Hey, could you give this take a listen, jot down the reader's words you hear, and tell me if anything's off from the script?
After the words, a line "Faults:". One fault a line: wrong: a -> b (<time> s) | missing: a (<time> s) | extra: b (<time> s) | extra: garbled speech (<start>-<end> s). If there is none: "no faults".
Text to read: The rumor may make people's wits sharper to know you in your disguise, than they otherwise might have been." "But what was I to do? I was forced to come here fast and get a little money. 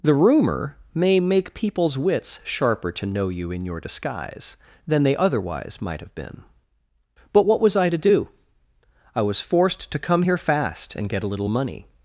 The rumor may make people's wits sharper to know you in your disguise, than they otherwise might have been." "But what was I to do? I was forced to come here fast and get a little money.
Faults:
no faults